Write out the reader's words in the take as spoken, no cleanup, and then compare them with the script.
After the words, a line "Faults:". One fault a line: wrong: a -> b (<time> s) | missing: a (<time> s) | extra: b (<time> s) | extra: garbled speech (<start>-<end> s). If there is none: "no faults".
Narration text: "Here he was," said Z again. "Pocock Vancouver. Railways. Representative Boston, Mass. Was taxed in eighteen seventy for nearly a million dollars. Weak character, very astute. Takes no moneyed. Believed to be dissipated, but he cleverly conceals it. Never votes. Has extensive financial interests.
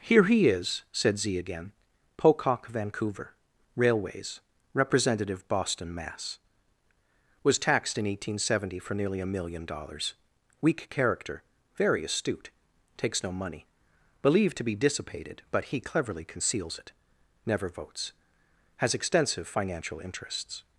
"Here he is," said Z again. "Pocock Vancouver. Railways. Representative Boston, Mass. Was taxed in eighteen seventy for nearly a million dollars. Weak character, very astute. Takes no money. Believed to be dissipated, but he cleverly conceals it. Never votes. Has extensive financial interests.
Faults:
wrong: was -> is (0.5 s)
wrong: moneyed -> money (13.3 s)